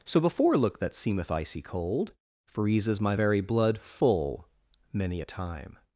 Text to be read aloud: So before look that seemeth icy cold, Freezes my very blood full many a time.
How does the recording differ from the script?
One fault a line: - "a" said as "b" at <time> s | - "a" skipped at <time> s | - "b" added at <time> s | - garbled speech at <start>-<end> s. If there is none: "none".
none